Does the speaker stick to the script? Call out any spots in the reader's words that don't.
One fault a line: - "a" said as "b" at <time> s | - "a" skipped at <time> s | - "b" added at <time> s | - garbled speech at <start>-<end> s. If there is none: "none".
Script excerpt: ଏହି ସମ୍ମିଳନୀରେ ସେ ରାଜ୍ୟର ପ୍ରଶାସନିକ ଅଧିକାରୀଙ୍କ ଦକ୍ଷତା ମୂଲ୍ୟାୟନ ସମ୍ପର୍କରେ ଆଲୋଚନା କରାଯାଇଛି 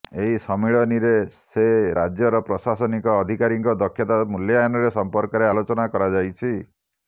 none